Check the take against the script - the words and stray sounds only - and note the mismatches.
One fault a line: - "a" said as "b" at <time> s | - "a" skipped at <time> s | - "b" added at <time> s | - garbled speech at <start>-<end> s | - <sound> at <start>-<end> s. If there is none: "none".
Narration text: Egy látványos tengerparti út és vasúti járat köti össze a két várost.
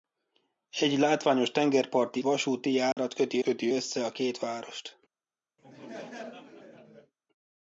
- "út és" skipped at 2.2 s
- dropout at 2.9-3.0 s
- "köti" added at 3.4 s
- laugh at 5.6-7.1 s